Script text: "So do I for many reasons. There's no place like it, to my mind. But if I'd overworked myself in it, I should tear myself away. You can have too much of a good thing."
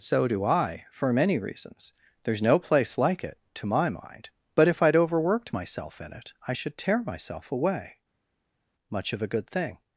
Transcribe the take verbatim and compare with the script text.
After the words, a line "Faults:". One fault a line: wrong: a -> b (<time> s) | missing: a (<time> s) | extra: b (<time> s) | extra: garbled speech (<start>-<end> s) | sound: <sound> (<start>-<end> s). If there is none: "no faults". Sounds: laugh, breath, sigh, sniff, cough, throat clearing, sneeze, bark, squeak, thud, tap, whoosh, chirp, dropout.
"So do I for many reasons. There's no place like it, to my mind. But if I'd overworked myself in it, I should tear myself away. much of a good thing."
Faults:
missing: You can have too (7.9 s)